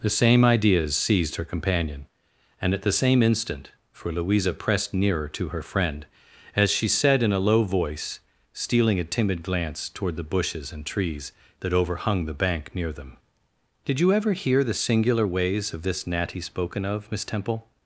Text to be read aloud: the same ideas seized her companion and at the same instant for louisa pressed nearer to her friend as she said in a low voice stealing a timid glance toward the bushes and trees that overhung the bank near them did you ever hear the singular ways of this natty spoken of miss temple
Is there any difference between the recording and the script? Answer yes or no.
no